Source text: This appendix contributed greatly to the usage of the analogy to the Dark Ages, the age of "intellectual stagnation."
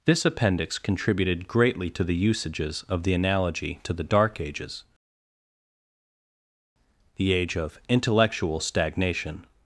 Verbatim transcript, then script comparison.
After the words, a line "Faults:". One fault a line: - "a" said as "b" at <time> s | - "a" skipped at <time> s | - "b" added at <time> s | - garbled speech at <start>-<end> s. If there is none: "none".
This appendix contributed greatly to the usages of the analogy to the Dark Ages, the age of "intellectual stagnation."
Faults:
- "usage" said as "usages" at 2.1 s